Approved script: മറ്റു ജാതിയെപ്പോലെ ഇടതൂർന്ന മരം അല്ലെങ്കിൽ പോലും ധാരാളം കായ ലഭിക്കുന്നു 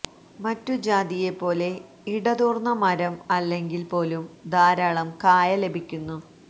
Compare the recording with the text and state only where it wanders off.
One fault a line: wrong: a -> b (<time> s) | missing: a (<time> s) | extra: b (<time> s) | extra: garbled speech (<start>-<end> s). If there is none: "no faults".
no faults